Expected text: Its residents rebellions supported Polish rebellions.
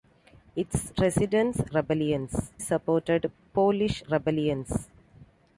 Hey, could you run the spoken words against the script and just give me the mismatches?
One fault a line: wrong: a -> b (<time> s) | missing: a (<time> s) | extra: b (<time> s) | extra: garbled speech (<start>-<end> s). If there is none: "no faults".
no faults